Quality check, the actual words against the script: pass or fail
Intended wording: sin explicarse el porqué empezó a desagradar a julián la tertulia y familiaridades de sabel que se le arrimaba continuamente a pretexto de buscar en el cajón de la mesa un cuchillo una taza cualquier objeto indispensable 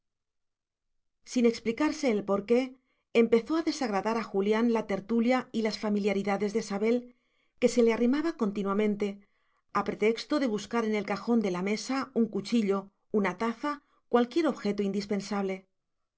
fail